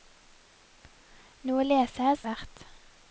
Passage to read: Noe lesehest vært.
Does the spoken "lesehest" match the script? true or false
true